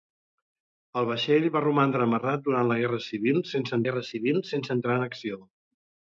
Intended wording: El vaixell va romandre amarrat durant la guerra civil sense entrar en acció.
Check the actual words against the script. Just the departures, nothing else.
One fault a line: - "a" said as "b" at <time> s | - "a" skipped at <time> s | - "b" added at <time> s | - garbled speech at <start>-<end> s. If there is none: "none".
- "guerra civil sense" added at 3.9 s